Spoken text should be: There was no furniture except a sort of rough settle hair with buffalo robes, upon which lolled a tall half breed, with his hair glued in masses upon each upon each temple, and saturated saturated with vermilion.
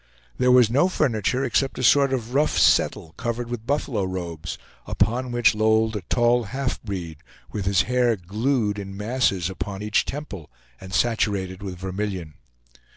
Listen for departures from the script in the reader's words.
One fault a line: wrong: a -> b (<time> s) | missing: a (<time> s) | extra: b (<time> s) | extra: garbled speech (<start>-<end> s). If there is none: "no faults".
wrong: hair -> covered (3.2 s)
missing: upon each (10.0 s)
missing: saturated (11.6 s)